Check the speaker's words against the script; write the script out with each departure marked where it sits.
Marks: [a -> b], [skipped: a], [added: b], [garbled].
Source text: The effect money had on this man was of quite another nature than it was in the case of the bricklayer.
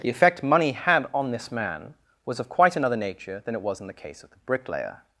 The effect money had on this man was of quite another nature than it was in the case of the bricklayer.